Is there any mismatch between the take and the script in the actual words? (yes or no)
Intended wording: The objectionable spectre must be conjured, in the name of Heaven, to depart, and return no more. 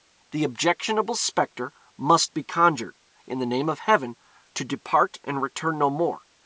no